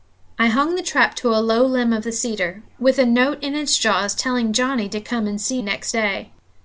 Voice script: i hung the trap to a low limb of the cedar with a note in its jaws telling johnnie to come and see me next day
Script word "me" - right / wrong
wrong